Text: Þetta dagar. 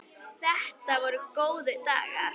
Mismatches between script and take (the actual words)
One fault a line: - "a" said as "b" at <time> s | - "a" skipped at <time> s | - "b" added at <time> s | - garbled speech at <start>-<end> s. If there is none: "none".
- "voru góðir" added at 1.1 s